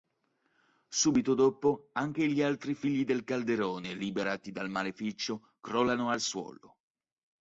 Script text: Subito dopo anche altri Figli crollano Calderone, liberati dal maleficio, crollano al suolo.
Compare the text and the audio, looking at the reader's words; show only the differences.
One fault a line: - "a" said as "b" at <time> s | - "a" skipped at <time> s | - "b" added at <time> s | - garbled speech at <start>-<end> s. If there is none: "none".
- "gli" added at 2.2 s
- "crollano" said as "del" at 3.0 s